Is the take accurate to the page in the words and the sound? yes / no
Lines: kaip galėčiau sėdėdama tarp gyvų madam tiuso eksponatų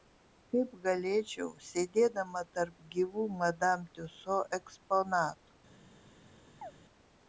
no